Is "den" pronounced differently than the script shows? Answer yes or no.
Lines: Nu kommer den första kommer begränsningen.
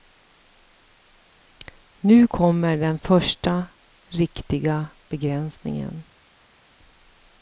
no